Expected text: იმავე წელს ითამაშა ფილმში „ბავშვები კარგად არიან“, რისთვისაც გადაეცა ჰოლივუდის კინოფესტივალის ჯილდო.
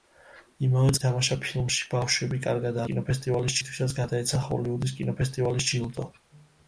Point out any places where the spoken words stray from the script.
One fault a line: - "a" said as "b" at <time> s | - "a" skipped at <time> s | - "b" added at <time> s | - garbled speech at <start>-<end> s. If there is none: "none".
- "წელს" skipped at 0.9 s
- "არიან" said as "კინოფესტივალის" at 2.9 s